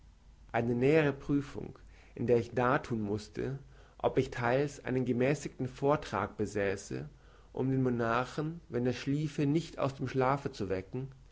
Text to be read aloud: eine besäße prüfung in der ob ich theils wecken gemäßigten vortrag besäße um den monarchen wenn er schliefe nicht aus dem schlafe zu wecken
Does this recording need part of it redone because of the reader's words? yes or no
yes